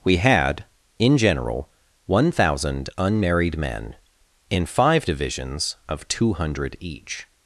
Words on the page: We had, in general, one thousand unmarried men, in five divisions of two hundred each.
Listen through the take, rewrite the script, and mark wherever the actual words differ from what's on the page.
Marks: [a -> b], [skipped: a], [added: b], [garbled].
We had, in general, one thousand unmarried men, in five divisions of two hundred each.